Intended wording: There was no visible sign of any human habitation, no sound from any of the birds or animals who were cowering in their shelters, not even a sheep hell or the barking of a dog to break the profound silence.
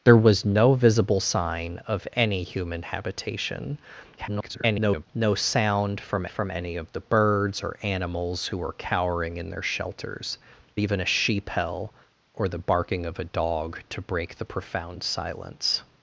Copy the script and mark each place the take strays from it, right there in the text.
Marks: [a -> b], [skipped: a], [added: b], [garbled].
There was no visible sign of any human habitation, [garbled] no sound from [added: from] any of the birds or animals who were cowering in their shelters, [skipped: not] even a sheep hell or the barking of a dog to break the profound silence.